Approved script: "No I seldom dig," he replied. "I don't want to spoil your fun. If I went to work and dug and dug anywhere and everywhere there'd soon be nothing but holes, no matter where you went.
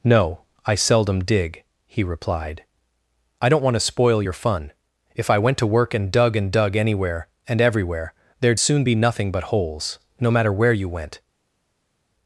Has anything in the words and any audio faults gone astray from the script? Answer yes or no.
no